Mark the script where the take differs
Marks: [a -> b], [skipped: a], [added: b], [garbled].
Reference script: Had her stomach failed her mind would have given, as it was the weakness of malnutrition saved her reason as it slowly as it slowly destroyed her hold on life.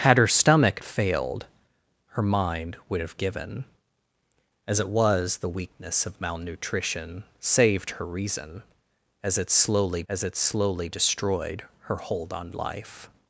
Had her stomach failed her mind would have given, as it was the weakness of malnutrition saved her reason as it slowly as it slowly destroyed her hold on life.